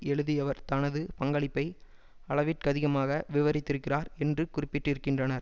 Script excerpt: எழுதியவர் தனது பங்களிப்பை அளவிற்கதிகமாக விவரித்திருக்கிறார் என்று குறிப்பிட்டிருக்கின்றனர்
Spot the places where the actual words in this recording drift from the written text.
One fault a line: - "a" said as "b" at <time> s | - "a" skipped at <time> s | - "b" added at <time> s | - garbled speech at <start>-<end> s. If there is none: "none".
none